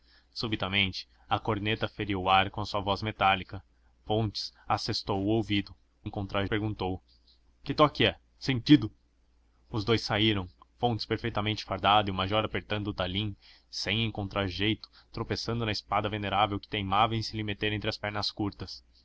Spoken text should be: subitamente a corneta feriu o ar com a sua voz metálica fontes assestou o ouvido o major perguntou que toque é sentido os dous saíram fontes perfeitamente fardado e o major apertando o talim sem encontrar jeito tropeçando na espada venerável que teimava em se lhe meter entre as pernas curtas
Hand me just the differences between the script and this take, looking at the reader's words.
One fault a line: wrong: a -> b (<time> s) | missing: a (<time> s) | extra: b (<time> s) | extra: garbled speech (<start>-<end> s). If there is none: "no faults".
wrong: major -> encontrar (6.0 s)